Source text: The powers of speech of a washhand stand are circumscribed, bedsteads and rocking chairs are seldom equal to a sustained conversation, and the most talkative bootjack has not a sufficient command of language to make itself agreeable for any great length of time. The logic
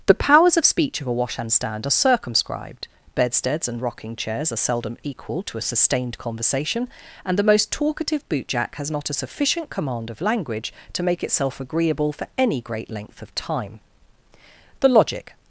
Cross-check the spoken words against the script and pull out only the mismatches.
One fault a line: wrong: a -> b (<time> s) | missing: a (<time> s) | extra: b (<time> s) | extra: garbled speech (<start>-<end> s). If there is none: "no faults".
no faults